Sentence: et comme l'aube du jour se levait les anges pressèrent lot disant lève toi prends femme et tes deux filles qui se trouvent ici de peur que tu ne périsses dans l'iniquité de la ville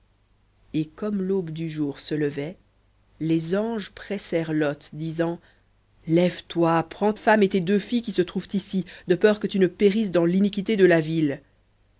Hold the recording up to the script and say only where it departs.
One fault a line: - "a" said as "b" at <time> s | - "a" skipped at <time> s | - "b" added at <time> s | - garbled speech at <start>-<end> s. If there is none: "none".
none